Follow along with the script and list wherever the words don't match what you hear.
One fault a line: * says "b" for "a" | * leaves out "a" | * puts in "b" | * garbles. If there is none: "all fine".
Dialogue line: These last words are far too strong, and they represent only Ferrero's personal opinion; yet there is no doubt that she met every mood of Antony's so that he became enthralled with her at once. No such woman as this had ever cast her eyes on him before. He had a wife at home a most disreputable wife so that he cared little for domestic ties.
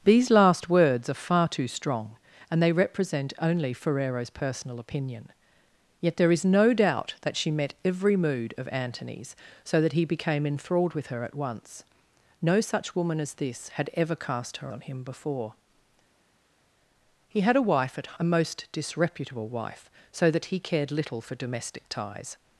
* leaves out "eyes"
* leaves out "home"